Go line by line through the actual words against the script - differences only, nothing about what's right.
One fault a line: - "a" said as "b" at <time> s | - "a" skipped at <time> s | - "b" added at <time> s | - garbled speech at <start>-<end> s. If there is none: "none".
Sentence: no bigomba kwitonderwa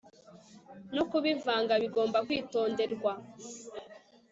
- "kubivanga" added at 1.1 s